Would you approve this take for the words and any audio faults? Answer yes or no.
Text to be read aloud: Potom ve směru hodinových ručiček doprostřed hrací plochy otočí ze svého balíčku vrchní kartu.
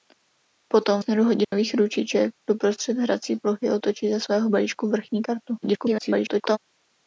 no